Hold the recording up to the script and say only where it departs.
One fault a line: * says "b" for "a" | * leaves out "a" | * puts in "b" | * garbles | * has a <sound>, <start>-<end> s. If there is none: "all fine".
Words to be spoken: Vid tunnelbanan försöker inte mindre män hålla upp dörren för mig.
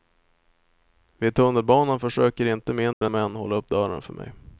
* has a dropout, 2.9-3.0 s